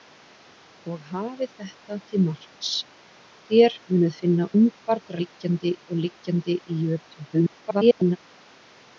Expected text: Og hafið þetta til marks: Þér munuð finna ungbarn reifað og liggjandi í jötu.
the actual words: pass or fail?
fail